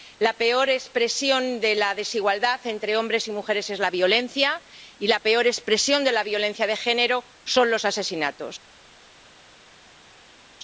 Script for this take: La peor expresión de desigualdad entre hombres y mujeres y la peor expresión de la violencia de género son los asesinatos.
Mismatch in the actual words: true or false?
true